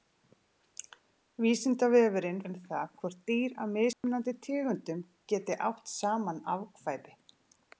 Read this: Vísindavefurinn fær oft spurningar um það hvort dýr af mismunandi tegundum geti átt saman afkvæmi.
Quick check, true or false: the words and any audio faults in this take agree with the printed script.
false